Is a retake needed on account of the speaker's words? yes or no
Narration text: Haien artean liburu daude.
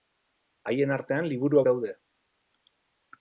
no